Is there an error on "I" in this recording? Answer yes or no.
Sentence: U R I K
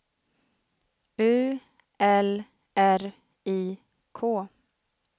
no